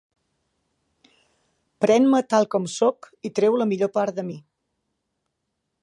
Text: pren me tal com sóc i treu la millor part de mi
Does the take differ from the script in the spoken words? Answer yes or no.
no